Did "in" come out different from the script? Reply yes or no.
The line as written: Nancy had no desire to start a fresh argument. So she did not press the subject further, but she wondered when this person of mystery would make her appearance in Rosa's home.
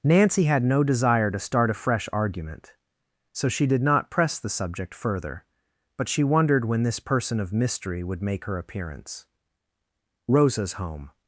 yes